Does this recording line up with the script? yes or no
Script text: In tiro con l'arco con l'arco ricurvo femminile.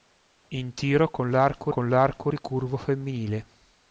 yes